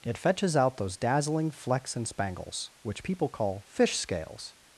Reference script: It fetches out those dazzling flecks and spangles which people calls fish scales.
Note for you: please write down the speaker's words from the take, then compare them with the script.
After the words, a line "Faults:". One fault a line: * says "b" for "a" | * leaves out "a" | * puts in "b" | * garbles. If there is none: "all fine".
It fetches out those dazzling flecks and spangles which people call fish scales.
Faults:
* says "call" for "calls"